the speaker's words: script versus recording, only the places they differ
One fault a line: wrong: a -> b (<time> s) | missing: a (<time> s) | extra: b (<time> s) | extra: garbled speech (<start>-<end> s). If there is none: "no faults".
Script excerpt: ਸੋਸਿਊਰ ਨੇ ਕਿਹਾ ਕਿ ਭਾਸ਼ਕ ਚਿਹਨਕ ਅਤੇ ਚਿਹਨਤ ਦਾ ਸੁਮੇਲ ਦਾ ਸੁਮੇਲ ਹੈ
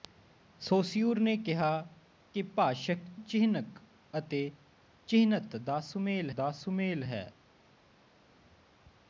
no faults